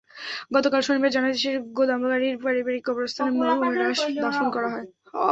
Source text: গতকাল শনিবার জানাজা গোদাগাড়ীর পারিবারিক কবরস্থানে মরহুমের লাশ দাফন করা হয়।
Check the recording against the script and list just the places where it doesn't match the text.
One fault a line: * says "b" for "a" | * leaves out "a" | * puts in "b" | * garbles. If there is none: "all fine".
* puts in "শেষে"